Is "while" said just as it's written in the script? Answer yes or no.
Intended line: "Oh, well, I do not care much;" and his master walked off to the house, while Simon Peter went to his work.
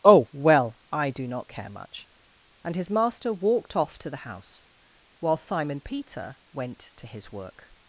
yes